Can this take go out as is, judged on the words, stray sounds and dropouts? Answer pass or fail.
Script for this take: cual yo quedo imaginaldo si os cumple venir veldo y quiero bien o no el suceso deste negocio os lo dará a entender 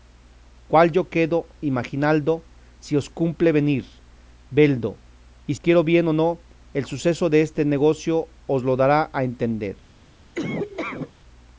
fail